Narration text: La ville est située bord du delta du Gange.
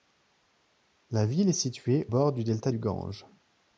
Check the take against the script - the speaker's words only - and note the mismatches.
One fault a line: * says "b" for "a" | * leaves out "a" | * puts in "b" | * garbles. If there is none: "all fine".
all fine